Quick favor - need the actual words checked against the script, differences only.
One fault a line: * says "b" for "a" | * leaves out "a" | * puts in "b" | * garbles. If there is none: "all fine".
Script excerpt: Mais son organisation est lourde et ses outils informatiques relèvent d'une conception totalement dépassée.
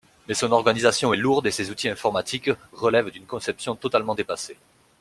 all fine